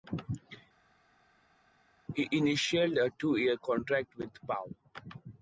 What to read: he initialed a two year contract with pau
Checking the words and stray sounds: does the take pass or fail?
pass